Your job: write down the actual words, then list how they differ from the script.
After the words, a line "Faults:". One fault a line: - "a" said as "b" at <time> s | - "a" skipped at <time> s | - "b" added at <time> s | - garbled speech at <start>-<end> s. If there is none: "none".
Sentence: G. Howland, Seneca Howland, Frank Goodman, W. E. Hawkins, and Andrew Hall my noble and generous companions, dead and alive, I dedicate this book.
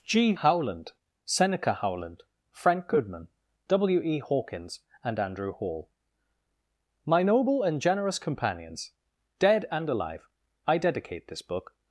G. Howland, Seneca Howland, Frank Goodman, W. E. Hawkins, and Andrew Hall my noble and generous companions, dead and alive, I dedicate this book.
Faults:
none